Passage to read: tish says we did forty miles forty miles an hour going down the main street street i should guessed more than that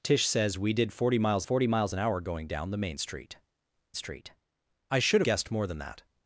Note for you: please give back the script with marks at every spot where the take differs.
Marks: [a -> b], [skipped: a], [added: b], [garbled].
tish says we did forty miles forty miles an hour going down the main street street i should guessed more than that